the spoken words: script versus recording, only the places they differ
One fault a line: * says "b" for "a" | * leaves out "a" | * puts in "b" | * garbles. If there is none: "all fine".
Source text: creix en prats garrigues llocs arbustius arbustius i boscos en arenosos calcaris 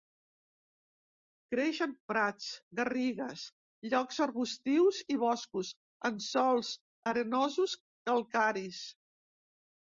* leaves out "arbustius"
* puts in "sòls"